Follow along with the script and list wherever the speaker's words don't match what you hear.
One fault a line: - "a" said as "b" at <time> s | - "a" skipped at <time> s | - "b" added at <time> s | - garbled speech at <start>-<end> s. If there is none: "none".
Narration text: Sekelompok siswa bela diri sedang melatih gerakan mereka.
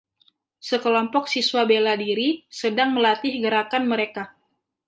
none